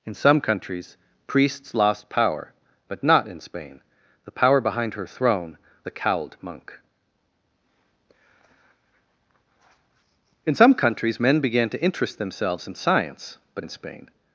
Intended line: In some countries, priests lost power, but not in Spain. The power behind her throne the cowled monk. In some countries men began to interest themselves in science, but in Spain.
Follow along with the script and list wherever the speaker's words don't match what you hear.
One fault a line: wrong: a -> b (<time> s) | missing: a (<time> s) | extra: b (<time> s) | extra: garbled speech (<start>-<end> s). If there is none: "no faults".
no faults